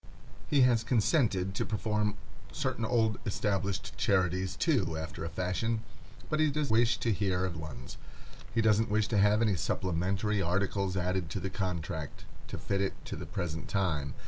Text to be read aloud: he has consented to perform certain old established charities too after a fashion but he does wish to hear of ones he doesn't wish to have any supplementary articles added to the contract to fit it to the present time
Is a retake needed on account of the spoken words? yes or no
no